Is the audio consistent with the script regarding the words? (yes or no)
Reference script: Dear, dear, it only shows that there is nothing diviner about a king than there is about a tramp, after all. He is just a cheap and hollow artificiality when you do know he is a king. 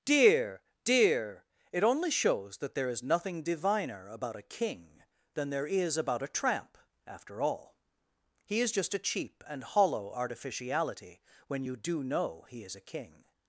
yes